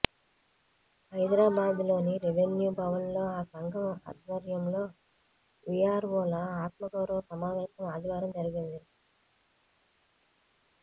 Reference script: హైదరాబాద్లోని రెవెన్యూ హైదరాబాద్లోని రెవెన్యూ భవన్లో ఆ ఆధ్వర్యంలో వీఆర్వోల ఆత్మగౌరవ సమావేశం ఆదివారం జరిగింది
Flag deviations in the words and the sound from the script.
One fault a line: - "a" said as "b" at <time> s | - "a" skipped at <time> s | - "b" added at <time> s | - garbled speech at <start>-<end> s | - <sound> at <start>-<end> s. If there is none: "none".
- "హైదరాబాద్లోని రెవెన్యూ" skipped at 2.7 s
- "సంఘం" added at 3.5 s